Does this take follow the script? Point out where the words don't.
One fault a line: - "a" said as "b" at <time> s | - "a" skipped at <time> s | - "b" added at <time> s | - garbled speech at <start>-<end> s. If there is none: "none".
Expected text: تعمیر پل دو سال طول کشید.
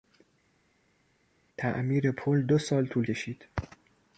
none